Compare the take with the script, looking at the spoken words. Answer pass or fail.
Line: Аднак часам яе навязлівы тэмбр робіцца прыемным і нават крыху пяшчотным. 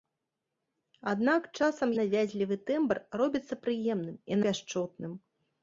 fail